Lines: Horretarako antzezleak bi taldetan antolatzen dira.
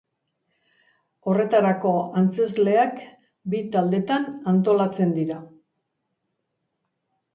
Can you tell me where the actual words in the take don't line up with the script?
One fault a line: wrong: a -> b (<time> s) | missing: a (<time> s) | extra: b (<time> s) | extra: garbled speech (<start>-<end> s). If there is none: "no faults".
no faults